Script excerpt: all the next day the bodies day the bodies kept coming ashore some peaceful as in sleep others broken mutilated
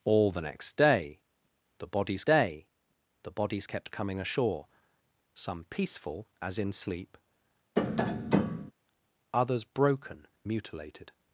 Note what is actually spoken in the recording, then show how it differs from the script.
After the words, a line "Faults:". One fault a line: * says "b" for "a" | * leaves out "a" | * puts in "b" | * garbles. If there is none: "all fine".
all the next day the bodies day the bodies kept coming ashore some peaceful as in sleep others broken mutilated
Faults:
all fine